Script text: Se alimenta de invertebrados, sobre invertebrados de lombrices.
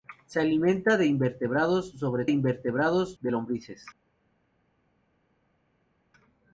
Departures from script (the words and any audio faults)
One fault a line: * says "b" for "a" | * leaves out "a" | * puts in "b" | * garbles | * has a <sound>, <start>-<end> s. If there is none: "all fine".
all fine